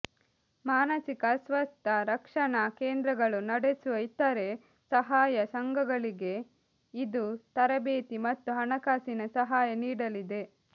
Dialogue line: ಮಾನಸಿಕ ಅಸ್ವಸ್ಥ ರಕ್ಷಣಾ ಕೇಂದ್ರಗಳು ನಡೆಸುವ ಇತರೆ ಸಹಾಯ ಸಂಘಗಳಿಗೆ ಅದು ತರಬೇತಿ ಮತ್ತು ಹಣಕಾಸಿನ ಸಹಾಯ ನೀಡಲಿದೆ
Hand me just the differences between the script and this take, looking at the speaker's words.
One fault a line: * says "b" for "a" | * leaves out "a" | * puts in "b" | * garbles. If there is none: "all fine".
* says "ಇದು" for "ಅದು"